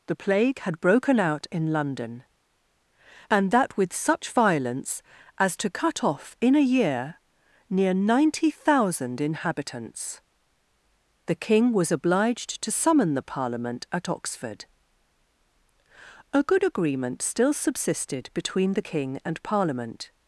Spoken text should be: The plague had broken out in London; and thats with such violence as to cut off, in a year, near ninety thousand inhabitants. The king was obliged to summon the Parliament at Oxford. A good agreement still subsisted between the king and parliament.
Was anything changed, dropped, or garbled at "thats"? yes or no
yes